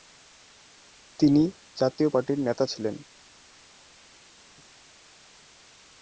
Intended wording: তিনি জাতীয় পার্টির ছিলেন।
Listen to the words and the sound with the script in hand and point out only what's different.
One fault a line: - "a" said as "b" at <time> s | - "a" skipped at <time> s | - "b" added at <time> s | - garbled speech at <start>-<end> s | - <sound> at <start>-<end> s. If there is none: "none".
- "নেতা" added at 2.4 s